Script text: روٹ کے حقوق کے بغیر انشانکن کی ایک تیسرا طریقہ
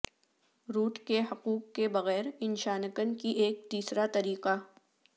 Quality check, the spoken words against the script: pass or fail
pass